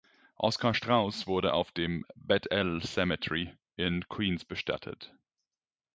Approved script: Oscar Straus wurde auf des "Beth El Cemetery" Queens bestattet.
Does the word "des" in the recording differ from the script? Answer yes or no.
yes